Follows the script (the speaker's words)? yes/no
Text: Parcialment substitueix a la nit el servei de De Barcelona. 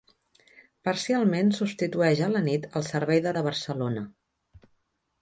yes